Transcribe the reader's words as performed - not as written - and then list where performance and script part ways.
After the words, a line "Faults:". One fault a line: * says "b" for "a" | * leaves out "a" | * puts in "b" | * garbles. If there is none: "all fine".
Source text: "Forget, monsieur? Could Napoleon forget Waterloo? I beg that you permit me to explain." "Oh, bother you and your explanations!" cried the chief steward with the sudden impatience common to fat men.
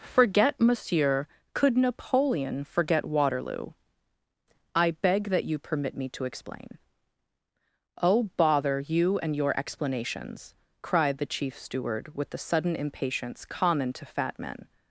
"Forget, monsieur? Could Napoleon forget Waterloo? I beg that you permit me to explain." "Oh, bother you and your explanations!" cried the chief steward with the sudden impatience common to fat men.
Faults:
all fine